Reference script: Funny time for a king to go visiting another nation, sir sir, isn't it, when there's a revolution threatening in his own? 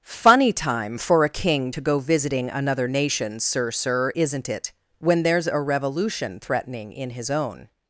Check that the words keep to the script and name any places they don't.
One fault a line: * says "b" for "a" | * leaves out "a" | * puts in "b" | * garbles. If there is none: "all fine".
all fine